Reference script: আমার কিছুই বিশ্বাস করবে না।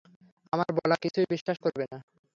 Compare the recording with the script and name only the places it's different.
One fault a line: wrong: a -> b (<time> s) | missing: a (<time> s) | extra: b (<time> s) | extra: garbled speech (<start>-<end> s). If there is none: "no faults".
extra: বলা (0.8 s)